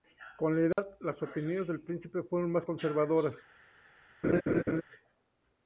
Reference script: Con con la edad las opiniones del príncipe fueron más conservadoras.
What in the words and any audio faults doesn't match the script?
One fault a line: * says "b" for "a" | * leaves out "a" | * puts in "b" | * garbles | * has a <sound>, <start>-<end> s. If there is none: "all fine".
* leaves out "con"
* has a dropout, 0.7-0.8 s
* has a laugh, 4.2-4.8 s